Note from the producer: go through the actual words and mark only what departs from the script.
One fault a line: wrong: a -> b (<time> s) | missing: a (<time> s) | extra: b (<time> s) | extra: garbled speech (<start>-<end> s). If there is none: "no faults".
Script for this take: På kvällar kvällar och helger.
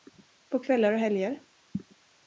missing: kvällar (0.9 s)